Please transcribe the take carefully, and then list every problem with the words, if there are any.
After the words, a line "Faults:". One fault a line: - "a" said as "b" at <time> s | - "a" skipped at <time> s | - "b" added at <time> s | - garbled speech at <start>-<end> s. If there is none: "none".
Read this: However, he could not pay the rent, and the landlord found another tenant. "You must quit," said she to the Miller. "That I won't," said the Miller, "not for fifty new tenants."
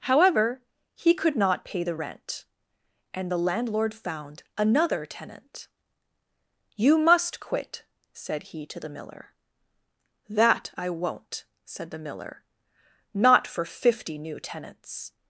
However, he could not pay the rent, and the landlord found another tenant. "You must quit," said he to the Miller. "That I won't," said the Miller, "not for fifty new tenants."
Faults:
- "she" said as "he" at 8.4 s